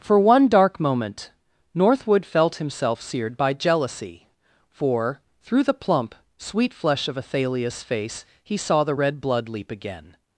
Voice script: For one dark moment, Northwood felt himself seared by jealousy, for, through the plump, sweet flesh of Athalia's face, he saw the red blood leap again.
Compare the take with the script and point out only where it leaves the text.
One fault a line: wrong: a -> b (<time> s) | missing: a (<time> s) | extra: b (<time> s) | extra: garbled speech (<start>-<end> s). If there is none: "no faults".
no faults